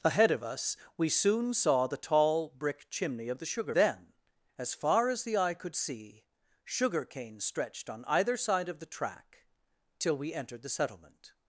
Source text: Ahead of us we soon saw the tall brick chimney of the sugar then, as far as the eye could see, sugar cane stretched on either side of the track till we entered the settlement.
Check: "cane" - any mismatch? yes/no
no